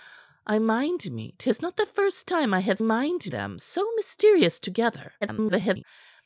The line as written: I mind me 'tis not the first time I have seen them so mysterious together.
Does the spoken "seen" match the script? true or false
false